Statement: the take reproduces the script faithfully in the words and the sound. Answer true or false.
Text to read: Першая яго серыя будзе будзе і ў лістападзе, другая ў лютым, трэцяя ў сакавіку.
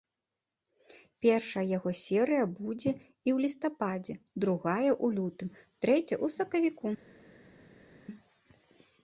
false